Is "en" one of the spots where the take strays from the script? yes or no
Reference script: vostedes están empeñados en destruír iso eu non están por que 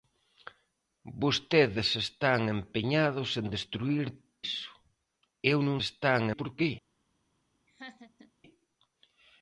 no